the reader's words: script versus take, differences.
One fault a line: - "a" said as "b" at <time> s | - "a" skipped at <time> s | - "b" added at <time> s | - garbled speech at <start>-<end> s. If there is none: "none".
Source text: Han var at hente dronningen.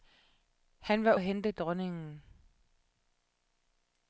none